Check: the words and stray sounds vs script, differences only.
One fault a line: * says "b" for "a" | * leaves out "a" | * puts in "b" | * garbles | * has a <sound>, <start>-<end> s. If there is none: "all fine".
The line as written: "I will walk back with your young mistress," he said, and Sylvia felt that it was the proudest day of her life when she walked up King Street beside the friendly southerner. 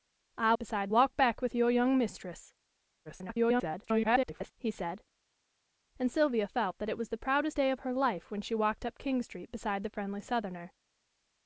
* says "beside" for "will"
* garbles